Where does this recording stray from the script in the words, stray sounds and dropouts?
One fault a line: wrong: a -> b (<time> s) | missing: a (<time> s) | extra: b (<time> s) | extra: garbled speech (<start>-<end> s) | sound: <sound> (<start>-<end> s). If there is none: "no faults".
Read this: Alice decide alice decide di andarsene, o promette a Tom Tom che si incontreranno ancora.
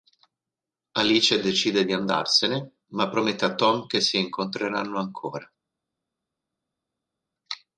missing: alice decide (1.9 s)
wrong: o -> ma (2.9 s)
missing: Tom (3.9 s)